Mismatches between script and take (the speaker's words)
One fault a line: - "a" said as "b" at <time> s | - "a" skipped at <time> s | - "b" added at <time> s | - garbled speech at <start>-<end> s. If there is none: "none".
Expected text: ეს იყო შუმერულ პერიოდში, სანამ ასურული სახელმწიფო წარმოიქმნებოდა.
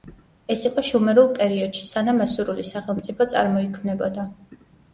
none